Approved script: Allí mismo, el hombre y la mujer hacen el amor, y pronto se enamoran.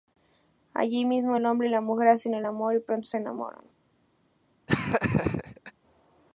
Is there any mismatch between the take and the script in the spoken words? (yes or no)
no